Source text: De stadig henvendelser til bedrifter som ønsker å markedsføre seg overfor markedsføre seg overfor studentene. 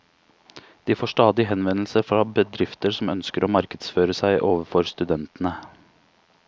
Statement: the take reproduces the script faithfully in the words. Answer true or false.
false